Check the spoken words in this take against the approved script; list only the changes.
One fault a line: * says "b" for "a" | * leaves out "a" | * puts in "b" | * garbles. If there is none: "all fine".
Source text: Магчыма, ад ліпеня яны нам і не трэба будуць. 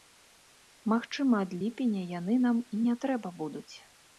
all fine